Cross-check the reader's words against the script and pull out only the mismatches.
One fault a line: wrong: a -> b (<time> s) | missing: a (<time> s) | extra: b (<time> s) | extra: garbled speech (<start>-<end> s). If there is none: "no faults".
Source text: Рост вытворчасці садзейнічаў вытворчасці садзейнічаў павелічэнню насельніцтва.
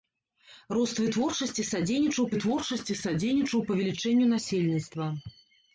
no faults